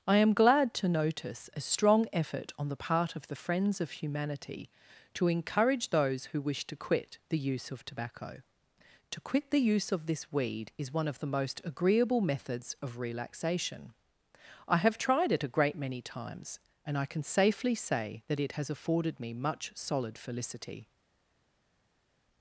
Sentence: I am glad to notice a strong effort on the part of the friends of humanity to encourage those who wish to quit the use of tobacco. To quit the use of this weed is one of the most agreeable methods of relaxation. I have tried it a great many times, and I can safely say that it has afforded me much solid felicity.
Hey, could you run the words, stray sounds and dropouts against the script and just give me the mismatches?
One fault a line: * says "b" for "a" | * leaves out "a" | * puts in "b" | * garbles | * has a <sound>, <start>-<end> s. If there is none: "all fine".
all fine